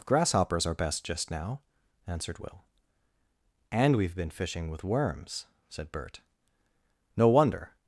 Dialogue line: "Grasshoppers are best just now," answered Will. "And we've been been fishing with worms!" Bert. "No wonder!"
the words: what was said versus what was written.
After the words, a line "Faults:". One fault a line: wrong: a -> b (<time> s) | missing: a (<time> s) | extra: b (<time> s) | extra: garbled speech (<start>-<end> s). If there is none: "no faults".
"Grasshoppers are best just now," answered Will. "And we've been fishing with worms!" said Bert. "No wonder!"
Faults:
missing: been (4.3 s)
extra: said (5.7 s)